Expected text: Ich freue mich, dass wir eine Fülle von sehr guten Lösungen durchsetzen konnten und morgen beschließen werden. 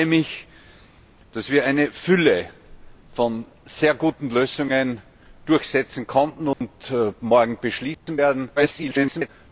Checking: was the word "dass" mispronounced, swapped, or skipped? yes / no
no